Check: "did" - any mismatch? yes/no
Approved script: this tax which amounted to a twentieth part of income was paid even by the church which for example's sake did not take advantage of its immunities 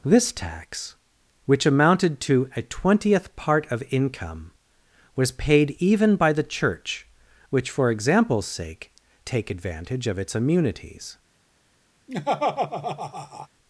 yes